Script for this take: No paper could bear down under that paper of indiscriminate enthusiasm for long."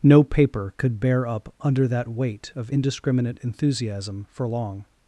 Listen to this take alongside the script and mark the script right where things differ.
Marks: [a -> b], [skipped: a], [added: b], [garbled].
No paper could bear [down -> up] under that [paper -> weight] of indiscriminate enthusiasm for long."